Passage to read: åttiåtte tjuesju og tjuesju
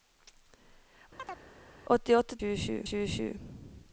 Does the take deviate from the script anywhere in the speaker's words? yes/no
no